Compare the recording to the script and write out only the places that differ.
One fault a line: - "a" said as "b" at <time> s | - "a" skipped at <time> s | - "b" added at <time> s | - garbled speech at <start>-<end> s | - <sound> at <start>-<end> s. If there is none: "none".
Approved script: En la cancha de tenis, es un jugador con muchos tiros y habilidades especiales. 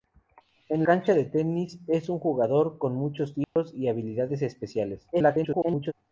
- "la" skipped at 0.8 s
- dropout at 3.4-3.6 s
- garbled speech at 5.1-5.9 s